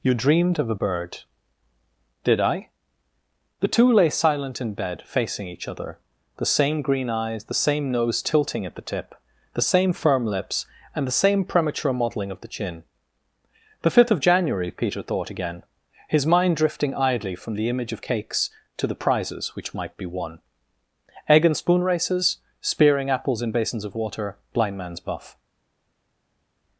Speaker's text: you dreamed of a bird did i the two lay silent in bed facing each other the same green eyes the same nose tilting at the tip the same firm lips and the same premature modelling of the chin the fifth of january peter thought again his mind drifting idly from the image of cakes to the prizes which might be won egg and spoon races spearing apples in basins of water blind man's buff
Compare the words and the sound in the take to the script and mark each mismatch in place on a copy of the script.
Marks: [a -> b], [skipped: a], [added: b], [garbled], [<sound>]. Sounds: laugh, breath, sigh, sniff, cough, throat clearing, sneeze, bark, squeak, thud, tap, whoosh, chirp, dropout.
you dreamed of a bird did i the two lay silent in bed facing each other the same green eyes the same nose tilting at the tip the same firm lips and the same premature modelling of the chin the fifth of january peter thought again his mind drifting idly from the image of cakes to the prizes which might be won egg and spoon races spearing apples in basins of water blind man's buff